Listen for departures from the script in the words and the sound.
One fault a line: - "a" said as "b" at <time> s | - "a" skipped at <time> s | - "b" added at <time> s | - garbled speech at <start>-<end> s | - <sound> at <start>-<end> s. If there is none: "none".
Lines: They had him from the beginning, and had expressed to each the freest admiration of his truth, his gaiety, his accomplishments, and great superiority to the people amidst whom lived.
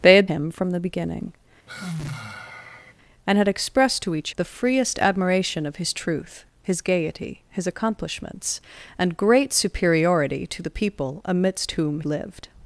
- sigh at 1.7-2.9 s